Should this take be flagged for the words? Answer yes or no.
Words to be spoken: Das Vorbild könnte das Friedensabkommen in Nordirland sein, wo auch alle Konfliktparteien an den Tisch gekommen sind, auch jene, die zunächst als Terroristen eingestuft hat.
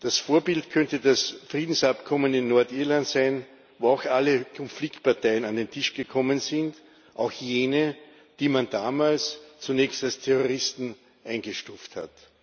yes